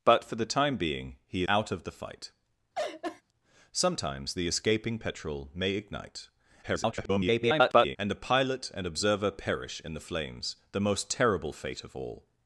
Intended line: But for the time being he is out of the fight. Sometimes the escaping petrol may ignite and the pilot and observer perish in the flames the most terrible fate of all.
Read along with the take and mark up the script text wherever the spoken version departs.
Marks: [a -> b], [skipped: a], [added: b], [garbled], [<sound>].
But for the time being he [skipped: is] out of the fight. [laugh] Sometimes the escaping petrol may ignite [garbled] and the pilot and observer perish in the flames the most terrible fate of all.